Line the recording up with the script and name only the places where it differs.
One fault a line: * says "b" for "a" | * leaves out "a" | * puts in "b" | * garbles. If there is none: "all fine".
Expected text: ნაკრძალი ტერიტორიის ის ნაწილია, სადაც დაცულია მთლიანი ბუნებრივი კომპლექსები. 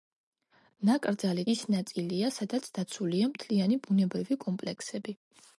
* leaves out "ტერიტორიის"